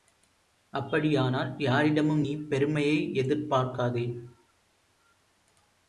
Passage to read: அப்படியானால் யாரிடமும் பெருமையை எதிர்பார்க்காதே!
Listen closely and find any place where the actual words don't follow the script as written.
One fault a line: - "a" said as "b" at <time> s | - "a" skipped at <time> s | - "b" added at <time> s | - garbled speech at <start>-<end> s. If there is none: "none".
- "நீ" added at 2.2 s